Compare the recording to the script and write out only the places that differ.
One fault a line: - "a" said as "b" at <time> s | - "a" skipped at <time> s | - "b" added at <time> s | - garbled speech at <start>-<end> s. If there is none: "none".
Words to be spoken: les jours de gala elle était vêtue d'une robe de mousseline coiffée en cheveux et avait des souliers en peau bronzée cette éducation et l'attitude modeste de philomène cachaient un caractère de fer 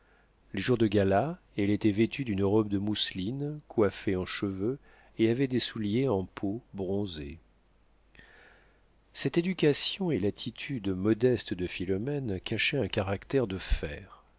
none